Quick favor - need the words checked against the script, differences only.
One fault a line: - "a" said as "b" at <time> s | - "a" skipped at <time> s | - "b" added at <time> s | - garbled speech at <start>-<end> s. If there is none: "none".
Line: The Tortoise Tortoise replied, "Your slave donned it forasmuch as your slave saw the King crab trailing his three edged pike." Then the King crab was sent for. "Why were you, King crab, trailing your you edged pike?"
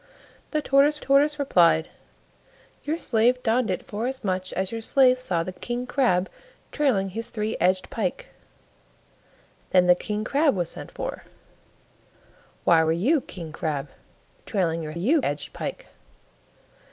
none